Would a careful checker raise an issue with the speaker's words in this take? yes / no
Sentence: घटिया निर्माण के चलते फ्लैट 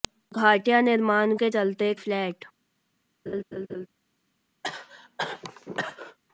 no